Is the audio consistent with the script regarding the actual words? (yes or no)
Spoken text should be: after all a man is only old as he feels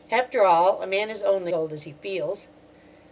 yes